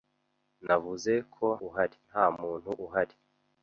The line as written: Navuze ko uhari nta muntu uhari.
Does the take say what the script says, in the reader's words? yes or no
yes